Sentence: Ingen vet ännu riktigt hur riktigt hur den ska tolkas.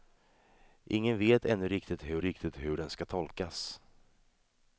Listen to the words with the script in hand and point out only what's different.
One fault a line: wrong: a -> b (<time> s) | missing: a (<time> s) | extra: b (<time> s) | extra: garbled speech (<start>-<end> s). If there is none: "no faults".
no faults